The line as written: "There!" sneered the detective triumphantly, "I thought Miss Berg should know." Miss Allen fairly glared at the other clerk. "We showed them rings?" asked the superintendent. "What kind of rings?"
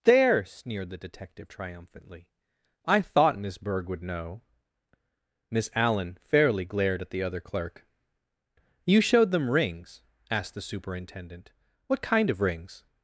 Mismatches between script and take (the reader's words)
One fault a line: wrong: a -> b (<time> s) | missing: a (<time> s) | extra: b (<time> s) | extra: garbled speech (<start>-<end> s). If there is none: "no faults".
wrong: should -> would (3.9 s)
wrong: We -> You (8.9 s)